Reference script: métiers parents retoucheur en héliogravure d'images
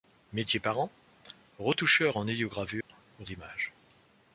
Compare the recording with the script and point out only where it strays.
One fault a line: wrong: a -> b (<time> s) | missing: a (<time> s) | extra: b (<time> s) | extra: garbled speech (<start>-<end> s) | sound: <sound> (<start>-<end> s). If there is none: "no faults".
sound: dropout (2.8-2.9 s)